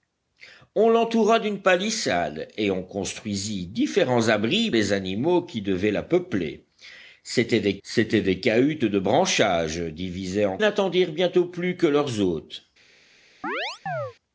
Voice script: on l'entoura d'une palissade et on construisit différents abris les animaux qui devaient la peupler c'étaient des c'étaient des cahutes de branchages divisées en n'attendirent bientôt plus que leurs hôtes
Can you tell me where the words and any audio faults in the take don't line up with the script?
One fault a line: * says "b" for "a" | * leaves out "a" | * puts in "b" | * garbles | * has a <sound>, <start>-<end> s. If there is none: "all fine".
* has a chirp, 13.4-14.1 s